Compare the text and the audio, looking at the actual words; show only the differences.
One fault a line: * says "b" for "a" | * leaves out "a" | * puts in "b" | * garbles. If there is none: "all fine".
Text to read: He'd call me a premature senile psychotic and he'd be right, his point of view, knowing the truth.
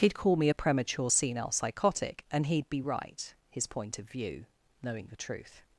all fine